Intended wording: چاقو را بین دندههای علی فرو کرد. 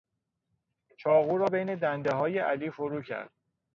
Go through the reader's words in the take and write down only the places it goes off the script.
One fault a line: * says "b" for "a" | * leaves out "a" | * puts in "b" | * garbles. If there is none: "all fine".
all fine